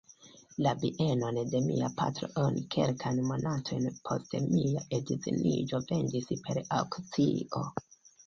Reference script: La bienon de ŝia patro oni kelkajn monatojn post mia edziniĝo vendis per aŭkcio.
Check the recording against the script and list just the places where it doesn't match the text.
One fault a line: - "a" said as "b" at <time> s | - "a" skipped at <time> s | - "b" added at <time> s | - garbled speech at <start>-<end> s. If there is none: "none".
- "ŝia" said as "mia" at 1.6 s